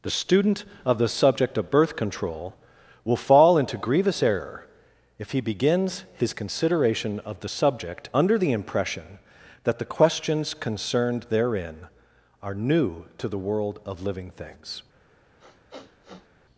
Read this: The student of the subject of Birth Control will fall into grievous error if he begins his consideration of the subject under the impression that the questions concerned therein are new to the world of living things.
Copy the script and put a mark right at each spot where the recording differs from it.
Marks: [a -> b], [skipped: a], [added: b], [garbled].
The student of the subject of Birth Control will fall into grievous error if he begins his consideration of the subject under the impression that the questions concerned therein are new to the world of living things.